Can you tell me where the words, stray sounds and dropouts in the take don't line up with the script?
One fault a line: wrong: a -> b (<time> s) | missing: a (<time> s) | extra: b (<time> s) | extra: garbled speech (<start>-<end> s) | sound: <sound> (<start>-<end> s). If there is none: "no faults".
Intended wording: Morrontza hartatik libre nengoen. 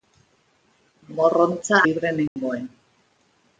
missing: hartatik (1.8 s)
sound: dropout (2.3-2.4 s)